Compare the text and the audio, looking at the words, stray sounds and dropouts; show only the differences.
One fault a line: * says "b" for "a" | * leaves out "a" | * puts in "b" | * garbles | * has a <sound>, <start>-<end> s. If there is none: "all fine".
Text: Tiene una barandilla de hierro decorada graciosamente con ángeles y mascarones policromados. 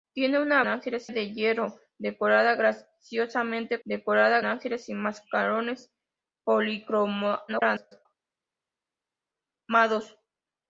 * says "ángeles" for "barandilla"
* says "decorada" for "con"
* garbles